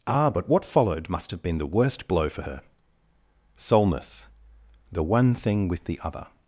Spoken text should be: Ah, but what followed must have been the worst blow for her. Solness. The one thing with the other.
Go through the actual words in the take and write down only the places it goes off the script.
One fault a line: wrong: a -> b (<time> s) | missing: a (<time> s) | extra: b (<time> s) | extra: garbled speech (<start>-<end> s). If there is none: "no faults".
no faults